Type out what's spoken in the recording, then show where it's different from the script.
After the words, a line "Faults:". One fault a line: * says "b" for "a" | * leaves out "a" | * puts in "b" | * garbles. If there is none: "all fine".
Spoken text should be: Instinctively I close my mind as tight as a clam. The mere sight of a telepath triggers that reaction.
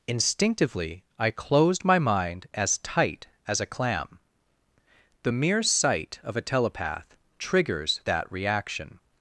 Instinctively I closed my mind as tight as a clam. The mere sight of a telepath triggers that reaction.
Faults:
* says "closed" for "close"